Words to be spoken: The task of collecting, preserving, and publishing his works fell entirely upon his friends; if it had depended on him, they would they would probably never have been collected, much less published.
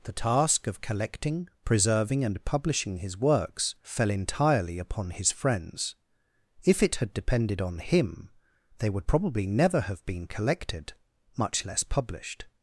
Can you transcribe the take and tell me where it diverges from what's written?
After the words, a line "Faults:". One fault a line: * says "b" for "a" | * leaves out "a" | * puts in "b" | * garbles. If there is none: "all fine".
The task of collecting, preserving, and publishing his works fell entirely upon his friends; if it had depended on him, they would probably never have been collected, much less published.
Faults:
* leaves out "they would"